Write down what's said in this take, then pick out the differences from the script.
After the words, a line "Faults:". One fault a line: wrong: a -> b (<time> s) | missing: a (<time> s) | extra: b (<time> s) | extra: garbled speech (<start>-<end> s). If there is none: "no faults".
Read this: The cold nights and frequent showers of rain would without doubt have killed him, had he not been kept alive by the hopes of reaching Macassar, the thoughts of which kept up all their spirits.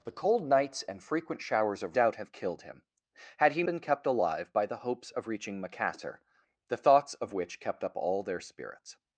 The cold nights and frequent showers of doubt have killed him, had he been kept alive by the hopes of reaching Macassar, the thoughts of which kept up all their spirits.
Faults:
missing: rain would without (2.0 s)
missing: not (3.6 s)